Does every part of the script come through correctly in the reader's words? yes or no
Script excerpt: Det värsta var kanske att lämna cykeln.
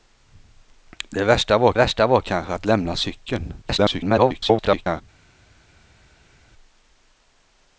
no